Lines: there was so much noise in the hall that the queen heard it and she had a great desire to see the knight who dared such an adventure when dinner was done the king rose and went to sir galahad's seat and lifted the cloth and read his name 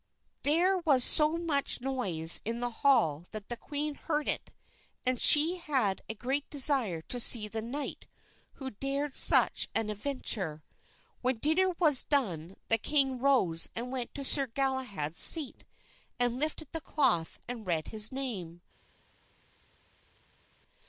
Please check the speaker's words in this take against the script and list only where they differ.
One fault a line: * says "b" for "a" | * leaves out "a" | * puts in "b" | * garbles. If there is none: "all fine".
all fine